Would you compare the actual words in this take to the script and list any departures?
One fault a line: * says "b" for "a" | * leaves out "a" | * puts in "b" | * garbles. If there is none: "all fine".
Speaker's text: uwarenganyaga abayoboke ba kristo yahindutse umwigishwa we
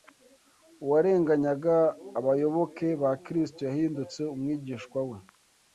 all fine